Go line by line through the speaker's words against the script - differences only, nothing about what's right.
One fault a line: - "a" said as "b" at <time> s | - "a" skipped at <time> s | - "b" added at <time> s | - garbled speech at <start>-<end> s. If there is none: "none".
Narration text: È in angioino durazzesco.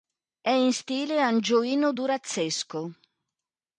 - "stile" added at 0.7 s